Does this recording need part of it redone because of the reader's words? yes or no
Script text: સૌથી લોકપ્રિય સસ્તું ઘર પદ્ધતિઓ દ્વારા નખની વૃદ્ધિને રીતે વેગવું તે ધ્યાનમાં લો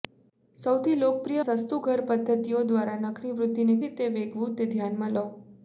no